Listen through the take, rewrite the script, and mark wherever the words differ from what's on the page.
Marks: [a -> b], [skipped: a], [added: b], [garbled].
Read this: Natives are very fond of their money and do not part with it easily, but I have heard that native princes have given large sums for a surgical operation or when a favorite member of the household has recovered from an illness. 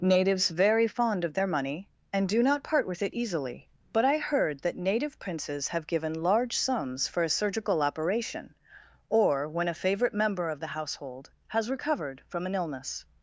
Natives [skipped: are] very fond of their money and do not part with it easily, but I [skipped: have] heard that native princes have given large sums for a surgical operation or when a favorite member of the household has recovered from an illness.